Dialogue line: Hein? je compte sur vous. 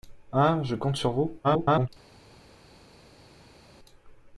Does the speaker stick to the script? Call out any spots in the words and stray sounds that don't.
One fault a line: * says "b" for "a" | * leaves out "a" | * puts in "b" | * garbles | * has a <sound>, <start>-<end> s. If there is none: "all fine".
* garbles